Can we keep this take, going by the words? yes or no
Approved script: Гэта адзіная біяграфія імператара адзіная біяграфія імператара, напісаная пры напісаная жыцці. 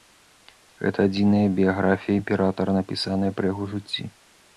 no